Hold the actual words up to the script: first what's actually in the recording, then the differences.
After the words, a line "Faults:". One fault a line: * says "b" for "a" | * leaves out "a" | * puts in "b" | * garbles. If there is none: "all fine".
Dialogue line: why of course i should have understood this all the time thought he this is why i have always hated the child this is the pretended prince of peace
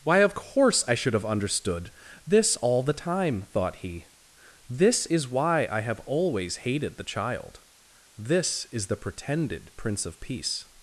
why of course i should have understood this all the time thought he this is why i have always hated the child this is the pretended prince of peace
Faults:
all fine